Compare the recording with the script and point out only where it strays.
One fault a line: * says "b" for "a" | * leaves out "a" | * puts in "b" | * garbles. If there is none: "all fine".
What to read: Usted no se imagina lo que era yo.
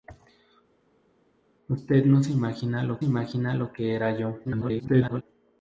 * puts in "imagina lo"
* garbles